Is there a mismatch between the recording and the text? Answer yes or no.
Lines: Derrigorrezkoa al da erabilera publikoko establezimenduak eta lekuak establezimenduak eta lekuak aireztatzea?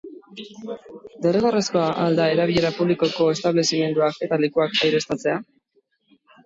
yes